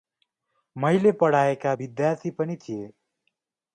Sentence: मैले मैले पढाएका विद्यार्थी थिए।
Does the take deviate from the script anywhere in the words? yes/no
yes